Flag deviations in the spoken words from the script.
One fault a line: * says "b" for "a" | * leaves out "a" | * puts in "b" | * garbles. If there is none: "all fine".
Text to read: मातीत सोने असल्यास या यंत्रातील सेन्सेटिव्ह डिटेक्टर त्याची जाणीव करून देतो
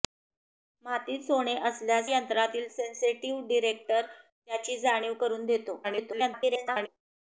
* leaves out "या"
* garbles